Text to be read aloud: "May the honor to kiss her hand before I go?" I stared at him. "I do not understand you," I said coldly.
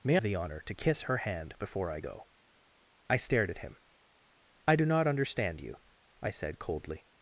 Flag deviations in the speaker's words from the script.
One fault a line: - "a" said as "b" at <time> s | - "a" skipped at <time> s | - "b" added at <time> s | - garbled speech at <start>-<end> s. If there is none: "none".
none